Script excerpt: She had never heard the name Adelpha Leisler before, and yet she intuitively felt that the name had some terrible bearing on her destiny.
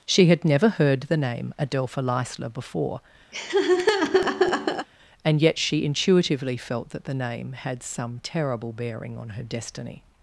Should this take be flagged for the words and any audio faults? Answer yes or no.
yes